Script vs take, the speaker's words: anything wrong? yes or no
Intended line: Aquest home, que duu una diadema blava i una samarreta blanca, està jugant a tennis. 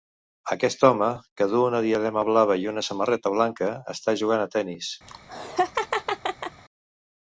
no